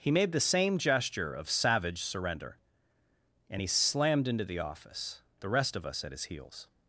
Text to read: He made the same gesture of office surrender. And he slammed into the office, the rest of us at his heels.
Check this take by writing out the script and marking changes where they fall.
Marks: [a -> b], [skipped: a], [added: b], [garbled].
He made the same gesture of [office -> savage] surrender. And he slammed into the office, the rest of us at his heels.